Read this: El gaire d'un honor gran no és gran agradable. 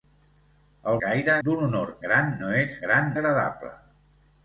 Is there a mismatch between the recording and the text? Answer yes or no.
no